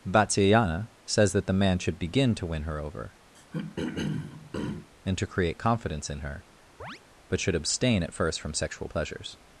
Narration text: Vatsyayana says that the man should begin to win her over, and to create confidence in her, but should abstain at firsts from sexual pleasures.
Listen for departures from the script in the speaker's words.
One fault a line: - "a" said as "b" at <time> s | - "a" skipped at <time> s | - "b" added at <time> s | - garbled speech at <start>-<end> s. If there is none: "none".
- "firsts" said as "first" at 8.1 s